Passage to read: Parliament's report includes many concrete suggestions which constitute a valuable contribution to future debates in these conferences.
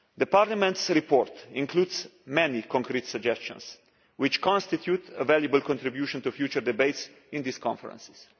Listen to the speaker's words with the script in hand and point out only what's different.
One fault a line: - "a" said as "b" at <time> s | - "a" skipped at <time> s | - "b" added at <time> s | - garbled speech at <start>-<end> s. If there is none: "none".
none